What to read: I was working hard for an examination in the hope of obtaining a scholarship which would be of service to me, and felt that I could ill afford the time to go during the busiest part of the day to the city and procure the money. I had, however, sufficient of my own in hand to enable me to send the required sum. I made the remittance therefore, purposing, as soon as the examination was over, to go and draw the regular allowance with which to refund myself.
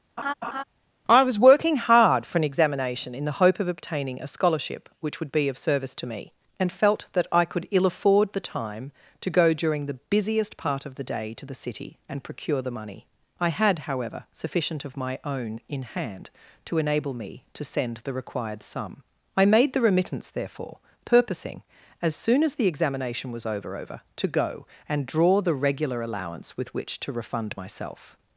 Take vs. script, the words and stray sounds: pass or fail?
fail